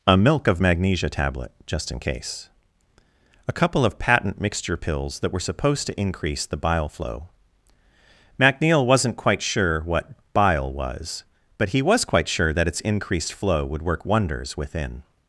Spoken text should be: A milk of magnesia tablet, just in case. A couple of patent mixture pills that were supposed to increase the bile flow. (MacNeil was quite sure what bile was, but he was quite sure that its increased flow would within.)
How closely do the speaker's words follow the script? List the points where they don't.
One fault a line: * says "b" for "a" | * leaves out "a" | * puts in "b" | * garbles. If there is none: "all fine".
* says "wasn't" for "was"
* puts in "work wonders"